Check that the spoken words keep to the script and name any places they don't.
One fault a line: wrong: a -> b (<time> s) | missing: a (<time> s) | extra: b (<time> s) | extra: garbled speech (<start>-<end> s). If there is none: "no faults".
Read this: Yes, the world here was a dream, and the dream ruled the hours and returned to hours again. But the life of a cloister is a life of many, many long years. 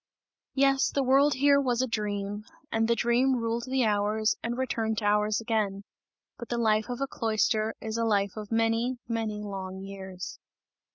no faults